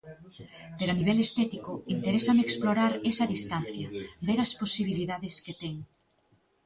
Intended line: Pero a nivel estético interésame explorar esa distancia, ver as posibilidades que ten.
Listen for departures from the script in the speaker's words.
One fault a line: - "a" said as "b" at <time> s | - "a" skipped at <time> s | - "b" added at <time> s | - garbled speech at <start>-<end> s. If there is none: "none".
none